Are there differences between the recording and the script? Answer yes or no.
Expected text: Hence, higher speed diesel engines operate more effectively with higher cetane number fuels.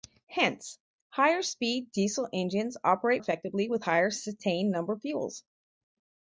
yes